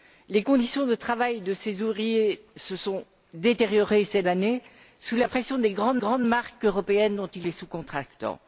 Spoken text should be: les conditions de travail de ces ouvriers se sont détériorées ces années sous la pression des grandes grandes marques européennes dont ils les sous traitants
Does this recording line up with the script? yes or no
yes